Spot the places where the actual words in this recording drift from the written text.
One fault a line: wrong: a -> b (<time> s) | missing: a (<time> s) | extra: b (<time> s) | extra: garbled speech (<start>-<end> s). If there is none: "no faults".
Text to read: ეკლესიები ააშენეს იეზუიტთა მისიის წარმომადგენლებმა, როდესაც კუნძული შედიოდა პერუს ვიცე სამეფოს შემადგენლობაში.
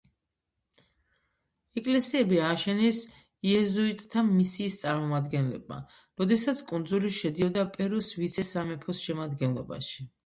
no faults